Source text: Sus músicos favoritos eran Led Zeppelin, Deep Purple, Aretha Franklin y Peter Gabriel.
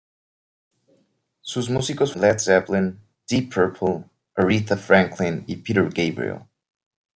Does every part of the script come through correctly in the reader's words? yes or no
no